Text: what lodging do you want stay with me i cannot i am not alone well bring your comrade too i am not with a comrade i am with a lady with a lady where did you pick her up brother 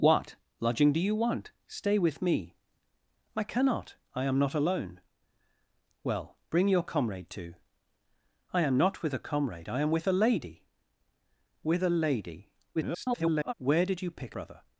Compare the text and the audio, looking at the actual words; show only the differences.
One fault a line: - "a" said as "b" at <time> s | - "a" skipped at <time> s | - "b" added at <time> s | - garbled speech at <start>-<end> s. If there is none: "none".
- garbled speech at 12.7-13.5 s
- "her up" skipped at 14.4 s